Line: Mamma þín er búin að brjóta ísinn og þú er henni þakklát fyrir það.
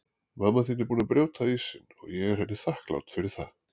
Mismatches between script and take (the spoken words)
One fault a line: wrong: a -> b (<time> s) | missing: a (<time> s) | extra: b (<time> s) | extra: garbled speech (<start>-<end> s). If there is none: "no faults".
wrong: þú -> ég (2.2 s)